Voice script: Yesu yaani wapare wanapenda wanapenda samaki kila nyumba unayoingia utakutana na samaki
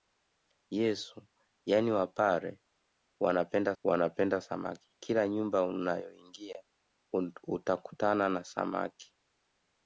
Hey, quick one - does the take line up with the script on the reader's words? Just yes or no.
yes